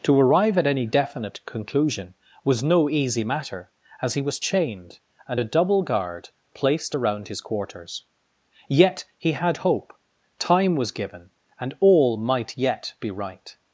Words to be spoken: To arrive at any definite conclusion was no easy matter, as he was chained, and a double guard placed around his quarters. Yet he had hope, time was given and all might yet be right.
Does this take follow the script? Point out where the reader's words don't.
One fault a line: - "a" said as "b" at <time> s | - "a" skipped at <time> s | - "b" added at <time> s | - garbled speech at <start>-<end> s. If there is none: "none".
none